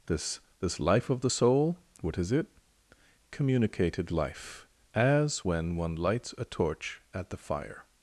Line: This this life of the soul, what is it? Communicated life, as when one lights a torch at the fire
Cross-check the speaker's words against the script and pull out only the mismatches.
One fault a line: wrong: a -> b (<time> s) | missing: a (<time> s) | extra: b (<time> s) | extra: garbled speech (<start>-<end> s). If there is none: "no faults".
no faults